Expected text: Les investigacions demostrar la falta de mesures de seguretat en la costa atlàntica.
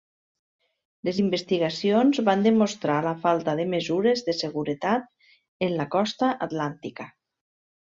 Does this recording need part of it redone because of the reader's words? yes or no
yes